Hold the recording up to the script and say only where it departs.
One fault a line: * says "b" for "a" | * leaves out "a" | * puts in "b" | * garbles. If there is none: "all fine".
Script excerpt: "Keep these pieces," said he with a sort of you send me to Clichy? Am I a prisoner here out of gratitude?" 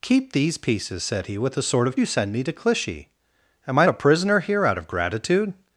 all fine